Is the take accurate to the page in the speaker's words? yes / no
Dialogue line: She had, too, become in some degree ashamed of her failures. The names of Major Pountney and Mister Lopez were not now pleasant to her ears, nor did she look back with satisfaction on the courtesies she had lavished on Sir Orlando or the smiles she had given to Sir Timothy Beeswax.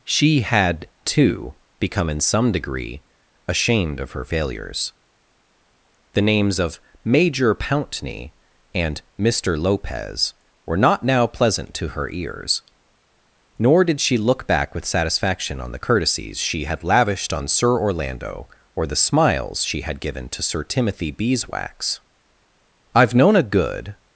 no